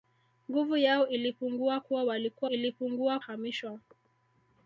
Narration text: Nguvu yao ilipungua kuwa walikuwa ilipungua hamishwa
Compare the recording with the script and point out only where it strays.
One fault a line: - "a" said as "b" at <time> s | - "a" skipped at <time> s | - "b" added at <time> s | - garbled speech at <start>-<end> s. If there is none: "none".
none